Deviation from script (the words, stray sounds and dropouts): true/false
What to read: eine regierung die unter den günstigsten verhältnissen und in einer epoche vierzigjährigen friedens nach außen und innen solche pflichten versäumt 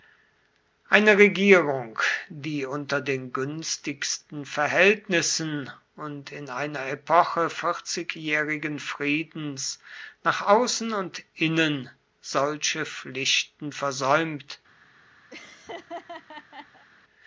true